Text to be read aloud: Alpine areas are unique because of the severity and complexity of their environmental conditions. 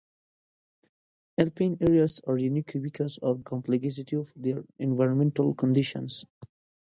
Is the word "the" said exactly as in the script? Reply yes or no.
no